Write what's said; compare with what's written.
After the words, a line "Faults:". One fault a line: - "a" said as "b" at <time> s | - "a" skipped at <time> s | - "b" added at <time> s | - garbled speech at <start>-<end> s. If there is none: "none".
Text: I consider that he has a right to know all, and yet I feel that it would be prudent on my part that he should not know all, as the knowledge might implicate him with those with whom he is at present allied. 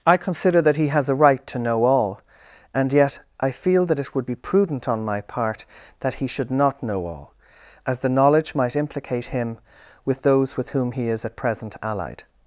I consider that he has a right to know all, and yet I feel that it would be prudent on my part that he should not know all, as the knowledge might implicate him with those with whom he is at present allied.
Faults:
none